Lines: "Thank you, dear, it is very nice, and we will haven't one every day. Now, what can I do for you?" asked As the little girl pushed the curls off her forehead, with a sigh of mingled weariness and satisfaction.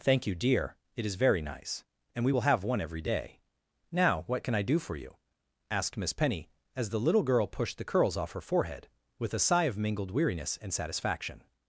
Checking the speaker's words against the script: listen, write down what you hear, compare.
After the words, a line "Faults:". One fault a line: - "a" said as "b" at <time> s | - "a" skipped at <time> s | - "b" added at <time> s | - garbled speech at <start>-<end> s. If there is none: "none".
"Thank you, dear, it is very nice, and we will have one every day. Now, what can I do for you?" asked Miss Penny, as the little girl pushed the curls off her forehead, with a sigh of mingled weariness and satisfaction.
Faults:
- "haven't" said as "have" at 2.5 s
- "Miss Penny" added at 6.0 s